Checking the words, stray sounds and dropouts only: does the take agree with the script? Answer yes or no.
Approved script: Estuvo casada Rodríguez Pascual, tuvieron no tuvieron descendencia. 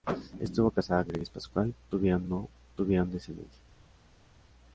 yes